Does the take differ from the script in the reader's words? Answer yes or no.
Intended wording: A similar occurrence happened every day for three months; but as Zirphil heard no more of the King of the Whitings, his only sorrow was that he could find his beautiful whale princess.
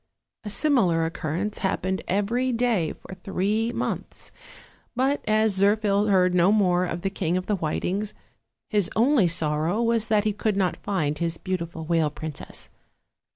yes